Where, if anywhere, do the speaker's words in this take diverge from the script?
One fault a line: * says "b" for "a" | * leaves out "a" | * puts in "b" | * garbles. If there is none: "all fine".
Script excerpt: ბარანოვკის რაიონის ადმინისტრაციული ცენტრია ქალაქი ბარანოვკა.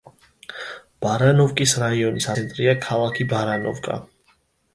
* leaves out "ადმინისტრაციული"